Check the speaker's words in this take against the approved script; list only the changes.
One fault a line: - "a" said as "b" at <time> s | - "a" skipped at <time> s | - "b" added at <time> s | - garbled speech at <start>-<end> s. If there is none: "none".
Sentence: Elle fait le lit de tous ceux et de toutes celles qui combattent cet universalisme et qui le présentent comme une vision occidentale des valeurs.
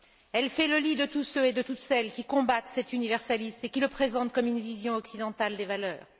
none